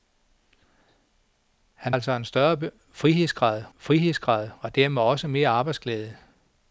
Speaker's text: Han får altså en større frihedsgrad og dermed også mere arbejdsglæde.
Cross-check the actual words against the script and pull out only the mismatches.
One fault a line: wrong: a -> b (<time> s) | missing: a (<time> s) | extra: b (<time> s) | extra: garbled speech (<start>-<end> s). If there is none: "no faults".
missing: får (1.9 s)
extra: frihedsgrad (3.8 s)